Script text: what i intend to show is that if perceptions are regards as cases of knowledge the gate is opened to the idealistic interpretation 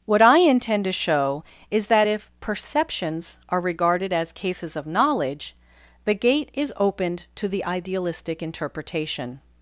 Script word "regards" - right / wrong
wrong